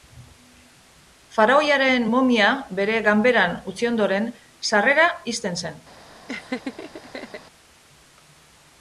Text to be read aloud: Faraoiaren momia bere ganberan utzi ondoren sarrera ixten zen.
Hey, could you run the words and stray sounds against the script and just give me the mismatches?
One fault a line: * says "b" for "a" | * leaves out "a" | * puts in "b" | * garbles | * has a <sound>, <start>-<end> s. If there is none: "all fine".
* has a laugh, 6.3-7.4 s